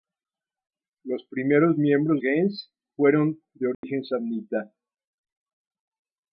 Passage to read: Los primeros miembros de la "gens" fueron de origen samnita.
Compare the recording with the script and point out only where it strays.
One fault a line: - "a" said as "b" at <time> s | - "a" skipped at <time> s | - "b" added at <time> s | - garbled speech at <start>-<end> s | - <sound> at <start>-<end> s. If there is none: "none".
- "de la" skipped at 2.2 s
- dropout at 3.7-3.8 s